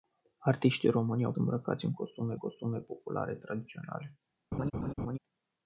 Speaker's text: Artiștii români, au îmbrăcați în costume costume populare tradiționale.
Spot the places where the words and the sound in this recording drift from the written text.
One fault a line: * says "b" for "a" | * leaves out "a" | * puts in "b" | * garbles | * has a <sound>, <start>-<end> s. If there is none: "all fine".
* has a laugh, 4.5-5.2 s